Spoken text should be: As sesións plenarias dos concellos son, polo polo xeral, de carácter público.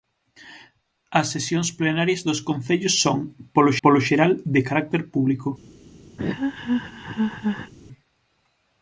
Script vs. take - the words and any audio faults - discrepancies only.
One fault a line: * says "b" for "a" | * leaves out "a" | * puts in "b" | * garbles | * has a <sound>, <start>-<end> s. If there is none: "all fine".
* has a laugh, 6.2-7.7 s